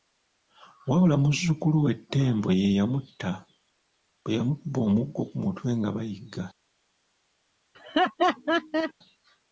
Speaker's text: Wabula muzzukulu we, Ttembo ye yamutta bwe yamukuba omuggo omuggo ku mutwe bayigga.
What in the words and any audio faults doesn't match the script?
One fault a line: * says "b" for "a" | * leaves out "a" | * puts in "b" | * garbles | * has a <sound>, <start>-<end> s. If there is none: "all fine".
* leaves out "omuggo"
* puts in "nga"
* has a laugh, 7.7-8.9 s